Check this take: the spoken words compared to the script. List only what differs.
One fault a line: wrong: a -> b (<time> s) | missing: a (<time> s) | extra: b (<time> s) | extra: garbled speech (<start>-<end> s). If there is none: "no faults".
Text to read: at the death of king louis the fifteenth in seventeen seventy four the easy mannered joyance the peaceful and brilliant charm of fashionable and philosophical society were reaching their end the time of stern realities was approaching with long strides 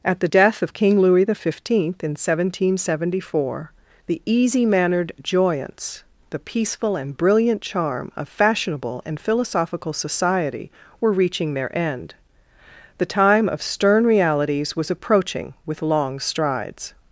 no faults